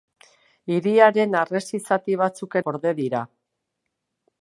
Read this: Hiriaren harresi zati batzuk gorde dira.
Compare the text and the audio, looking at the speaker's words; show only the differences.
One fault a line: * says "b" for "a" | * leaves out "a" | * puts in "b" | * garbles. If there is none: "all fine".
all fine